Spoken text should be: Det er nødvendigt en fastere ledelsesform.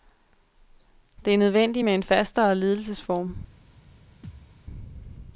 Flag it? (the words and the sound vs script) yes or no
yes